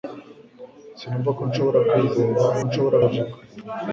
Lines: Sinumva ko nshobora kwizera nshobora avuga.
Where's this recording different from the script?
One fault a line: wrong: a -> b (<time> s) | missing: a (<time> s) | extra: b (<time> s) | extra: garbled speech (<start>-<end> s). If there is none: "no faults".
no faults